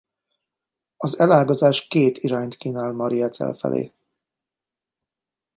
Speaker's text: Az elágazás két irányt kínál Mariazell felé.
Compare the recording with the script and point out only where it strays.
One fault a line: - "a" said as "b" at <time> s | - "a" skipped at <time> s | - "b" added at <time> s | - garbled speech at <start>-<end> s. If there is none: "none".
none